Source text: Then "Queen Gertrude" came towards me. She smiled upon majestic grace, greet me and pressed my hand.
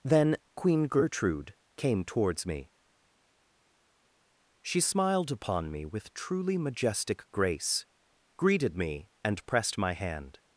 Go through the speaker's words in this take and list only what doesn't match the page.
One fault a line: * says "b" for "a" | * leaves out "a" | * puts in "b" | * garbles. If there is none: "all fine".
* puts in "me with truly"
* says "greeted" for "greet"